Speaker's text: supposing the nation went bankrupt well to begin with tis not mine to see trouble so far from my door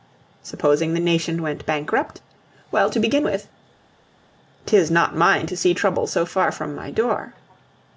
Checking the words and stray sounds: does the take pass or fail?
pass